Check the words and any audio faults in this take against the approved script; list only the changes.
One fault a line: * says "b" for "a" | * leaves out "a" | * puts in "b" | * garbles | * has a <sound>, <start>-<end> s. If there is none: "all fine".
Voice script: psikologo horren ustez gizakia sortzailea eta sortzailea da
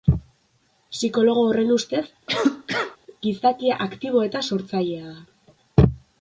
* has a cough, 2.3-3.0 s
* says "aktibo" for "sortzailea"